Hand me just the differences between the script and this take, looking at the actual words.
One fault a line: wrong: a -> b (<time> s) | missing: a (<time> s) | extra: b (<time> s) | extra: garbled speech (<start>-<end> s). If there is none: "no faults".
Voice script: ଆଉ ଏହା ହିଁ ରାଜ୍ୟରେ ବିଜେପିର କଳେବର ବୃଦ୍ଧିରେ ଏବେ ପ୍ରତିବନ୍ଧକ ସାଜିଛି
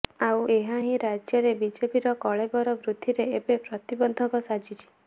no faults